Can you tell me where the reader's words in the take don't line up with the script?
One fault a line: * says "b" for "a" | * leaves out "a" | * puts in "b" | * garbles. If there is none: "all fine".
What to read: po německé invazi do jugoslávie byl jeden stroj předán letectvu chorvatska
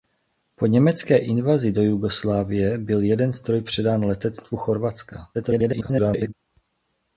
* garbles